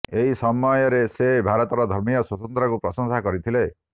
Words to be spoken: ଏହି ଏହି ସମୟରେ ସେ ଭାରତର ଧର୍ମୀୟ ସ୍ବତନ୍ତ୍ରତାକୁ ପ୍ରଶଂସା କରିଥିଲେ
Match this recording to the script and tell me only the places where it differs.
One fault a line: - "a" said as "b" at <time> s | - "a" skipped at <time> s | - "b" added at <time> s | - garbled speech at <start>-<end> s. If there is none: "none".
- "ଏହି" skipped at 0.3 s